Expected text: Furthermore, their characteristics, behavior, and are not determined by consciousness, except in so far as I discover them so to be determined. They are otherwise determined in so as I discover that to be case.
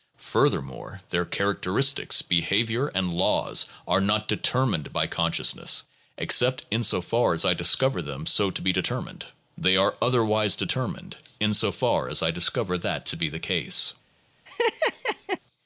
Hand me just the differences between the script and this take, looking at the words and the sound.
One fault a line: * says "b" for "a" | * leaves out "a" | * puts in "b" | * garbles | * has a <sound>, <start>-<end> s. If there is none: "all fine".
* puts in "laws"
* puts in "far"
* puts in "the"
* has a laugh, 14.5-15.4 s